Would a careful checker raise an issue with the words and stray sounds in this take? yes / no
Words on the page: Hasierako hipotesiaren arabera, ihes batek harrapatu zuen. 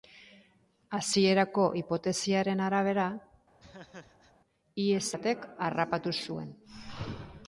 yes